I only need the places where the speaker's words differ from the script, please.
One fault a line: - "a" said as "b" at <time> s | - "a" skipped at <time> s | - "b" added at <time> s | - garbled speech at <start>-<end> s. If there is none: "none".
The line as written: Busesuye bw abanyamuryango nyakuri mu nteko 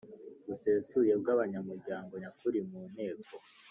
none